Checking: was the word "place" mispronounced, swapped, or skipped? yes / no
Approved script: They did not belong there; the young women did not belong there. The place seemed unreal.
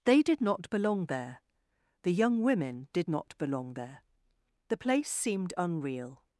no